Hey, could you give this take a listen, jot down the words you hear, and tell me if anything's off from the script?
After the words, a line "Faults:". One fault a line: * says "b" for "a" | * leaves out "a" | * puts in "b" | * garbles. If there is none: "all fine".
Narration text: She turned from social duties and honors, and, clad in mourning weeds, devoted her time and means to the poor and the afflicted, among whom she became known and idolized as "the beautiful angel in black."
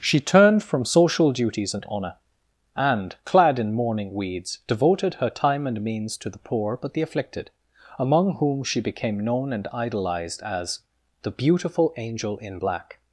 She turned from social duties and honor, and, clad in mourning weeds, devoted her time and means to the poor but the afflicted, among whom she became known and idolized as "the beautiful angel in black."
Faults:
* says "honor" for "honors"
* says "but" for "and"